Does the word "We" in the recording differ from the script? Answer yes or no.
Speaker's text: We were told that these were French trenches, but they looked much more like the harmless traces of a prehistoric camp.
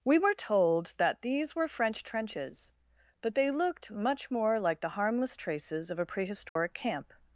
no